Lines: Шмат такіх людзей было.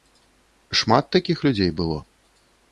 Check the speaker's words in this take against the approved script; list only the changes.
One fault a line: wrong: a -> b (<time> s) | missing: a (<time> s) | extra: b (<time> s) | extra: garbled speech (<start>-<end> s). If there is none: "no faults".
no faults